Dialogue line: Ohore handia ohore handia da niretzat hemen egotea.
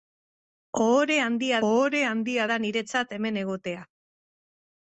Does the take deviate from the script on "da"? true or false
false